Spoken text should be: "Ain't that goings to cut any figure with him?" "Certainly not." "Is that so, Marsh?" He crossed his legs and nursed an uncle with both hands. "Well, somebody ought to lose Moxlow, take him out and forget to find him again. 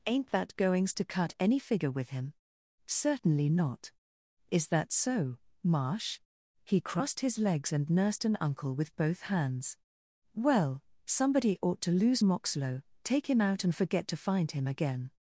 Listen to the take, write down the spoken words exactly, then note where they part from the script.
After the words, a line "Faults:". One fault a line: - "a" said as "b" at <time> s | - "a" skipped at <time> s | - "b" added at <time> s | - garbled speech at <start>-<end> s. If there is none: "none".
"Ain't that goings to cut any figure with him?" "Certainly not." "Is that so, Marsh?" He crossed his legs and nursed an uncle with both hands. "Well, somebody ought to lose Moxlow, take him out and forget to find him again.
Faults:
none